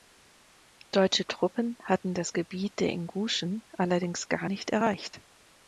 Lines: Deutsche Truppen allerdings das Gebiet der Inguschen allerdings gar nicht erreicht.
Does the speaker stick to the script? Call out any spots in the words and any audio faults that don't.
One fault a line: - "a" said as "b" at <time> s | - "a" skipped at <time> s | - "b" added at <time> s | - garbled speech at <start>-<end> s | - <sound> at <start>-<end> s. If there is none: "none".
- "allerdings" said as "hatten" at 1.8 s